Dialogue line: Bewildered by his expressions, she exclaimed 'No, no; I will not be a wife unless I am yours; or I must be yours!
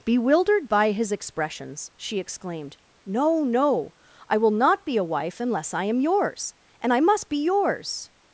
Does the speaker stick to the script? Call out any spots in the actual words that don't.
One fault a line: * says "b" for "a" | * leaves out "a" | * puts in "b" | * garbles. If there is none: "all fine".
* says "and" for "or"